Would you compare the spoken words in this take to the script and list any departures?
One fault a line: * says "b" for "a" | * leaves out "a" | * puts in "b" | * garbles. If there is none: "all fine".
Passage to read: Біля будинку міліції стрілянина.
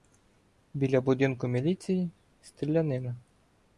all fine